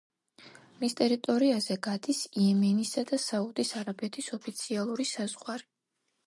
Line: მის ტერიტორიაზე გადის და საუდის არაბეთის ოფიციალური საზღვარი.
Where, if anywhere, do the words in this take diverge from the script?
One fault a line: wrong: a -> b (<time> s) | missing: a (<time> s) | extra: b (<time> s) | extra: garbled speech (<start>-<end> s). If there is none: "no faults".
extra: იემენისა (2.4 s)